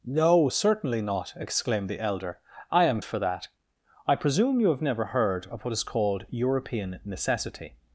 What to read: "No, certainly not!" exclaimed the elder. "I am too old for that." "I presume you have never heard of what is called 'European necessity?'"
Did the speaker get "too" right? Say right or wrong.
wrong